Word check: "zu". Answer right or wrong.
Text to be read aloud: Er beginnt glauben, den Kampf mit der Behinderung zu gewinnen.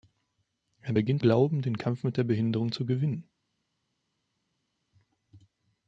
right